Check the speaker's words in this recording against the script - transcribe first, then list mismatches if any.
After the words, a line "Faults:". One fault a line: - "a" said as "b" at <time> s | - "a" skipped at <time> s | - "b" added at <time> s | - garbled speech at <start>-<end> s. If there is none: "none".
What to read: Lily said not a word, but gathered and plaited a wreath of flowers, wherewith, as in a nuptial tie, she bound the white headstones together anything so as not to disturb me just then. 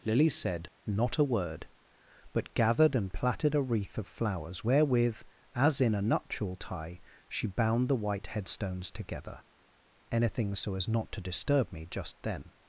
Lily said not a word, but gathered and plaited a wreath of flowers, wherewith, as in a nuptial tie, she bound the white headstones together anything so as not to disturb me just then.
Faults:
none